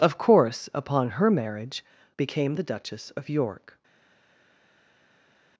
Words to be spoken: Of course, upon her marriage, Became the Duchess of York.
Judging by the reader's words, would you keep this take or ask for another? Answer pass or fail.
pass